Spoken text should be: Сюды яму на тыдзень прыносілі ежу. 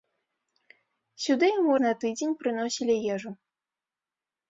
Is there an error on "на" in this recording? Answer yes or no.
no